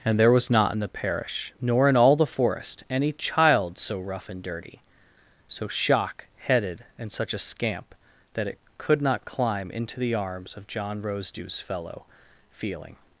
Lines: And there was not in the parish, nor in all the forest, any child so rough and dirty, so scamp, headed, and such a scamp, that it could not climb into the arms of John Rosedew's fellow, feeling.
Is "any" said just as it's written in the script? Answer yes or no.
yes